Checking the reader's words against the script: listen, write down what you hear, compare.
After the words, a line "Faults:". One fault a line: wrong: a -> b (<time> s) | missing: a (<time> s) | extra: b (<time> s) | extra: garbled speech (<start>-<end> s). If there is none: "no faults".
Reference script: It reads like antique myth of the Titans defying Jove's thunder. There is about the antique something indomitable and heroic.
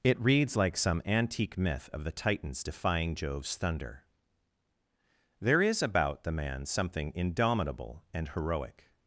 It reads like some antique myth of the Titans defying Jove's thunder. There is about the man something indomitable and heroic.
Faults:
extra: some (0.8 s)
wrong: antique -> man (6.3 s)